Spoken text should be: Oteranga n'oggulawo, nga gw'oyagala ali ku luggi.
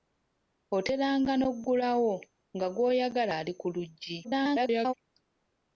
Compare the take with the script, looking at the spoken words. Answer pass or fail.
fail